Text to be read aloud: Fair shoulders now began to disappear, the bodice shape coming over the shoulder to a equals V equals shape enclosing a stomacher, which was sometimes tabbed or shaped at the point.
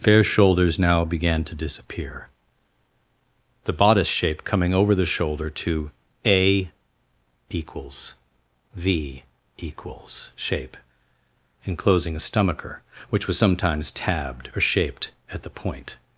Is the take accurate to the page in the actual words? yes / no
yes